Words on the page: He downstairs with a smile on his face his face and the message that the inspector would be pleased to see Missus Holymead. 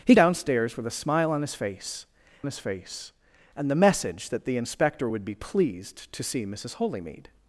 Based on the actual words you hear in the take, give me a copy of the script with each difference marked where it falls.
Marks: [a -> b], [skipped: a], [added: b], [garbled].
He downstairs with a smile on his face his face and the message that the inspector would be pleased to see Missus Holymead.